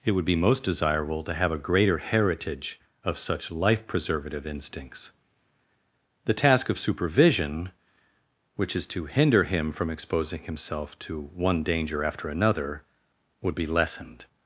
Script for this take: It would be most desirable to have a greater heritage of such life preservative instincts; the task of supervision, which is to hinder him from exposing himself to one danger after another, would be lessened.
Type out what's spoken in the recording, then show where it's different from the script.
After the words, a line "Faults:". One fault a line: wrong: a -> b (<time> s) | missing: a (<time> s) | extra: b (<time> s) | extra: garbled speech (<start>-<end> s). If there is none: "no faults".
It would be most desirable to have a greater heritage of such life preservative instincts; the task of supervision, which is to hinder him from exposing himself to one danger after another, would be lessened.
Faults:
no faults